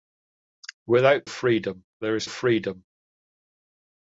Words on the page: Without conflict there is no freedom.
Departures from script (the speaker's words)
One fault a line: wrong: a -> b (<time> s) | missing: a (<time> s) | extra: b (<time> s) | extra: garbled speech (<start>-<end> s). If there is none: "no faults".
wrong: conflict -> freedom (1.3 s)
missing: no (2.3 s)